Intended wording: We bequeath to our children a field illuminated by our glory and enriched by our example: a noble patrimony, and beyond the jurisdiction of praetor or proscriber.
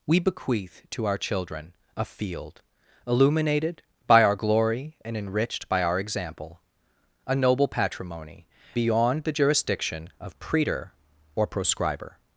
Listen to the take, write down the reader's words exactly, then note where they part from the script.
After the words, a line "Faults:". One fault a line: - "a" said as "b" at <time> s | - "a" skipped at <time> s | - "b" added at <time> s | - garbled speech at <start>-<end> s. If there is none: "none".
We bequeath to our children a field illuminated by our glory and enriched by our example: a noble patrimony, beyond the jurisdiction of praetor or proscriber.
Faults:
- "and" skipped at 8.5 s